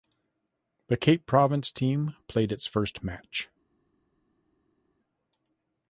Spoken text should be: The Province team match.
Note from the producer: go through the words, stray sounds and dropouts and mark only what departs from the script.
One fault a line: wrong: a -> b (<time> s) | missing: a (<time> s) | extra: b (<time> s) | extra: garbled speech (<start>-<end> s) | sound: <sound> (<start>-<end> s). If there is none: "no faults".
extra: Cape (1.0 s)
extra: played its first (2.3 s)